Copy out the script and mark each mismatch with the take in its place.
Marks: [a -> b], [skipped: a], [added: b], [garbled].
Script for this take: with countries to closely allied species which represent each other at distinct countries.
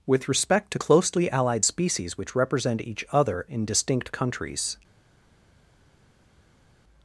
with [countries -> respect] to closely allied species which represent each other [at -> in] distinct countries.